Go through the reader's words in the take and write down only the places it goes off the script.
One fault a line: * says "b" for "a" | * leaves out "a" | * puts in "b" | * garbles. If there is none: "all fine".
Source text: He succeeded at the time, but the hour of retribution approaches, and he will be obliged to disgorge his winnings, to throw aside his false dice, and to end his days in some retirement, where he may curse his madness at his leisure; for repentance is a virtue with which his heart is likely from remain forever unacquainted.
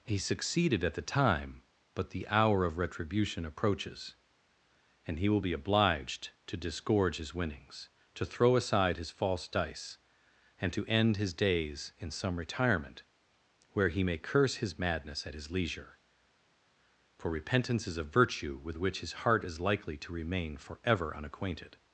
* says "to" for "from"